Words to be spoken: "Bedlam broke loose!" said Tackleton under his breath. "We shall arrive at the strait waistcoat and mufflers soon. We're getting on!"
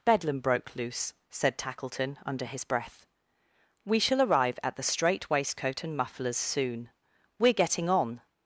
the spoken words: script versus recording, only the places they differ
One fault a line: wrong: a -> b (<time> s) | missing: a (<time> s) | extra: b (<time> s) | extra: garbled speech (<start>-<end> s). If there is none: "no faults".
no faults